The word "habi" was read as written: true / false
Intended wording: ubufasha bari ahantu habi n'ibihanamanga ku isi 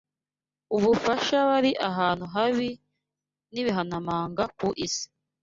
true